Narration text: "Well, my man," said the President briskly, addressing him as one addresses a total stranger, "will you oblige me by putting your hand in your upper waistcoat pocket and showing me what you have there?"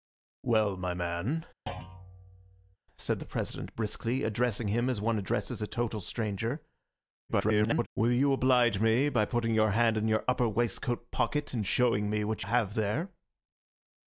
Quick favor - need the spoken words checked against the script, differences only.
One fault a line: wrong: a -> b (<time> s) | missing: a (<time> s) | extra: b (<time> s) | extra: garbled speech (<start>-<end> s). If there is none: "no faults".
extra: garbled speech (7.3-7.9 s)
missing: you (12.4 s)